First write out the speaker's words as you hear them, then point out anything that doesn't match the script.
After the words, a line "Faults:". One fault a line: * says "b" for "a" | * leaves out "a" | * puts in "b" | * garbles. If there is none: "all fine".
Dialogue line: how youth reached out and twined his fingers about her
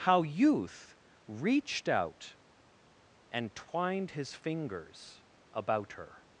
how youth reached out and twined his fingers about her
Faults:
all fine